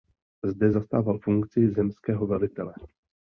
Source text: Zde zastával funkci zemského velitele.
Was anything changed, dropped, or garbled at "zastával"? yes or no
no